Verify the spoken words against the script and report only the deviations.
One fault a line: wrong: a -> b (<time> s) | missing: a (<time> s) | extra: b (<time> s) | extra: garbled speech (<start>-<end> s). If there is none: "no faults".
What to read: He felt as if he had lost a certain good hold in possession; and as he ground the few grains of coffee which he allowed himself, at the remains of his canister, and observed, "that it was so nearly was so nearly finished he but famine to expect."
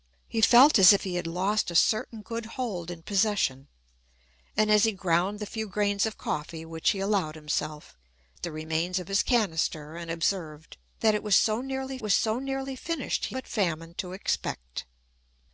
no faults